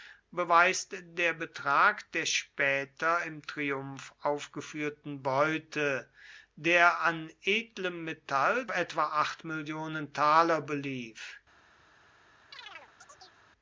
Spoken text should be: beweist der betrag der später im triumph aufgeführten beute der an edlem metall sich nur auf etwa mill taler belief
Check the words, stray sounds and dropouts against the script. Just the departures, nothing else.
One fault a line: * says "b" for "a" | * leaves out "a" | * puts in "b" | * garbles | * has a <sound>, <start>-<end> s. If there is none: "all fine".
* leaves out "sich nur auf"
* has a chirp, 12.5-13.4 s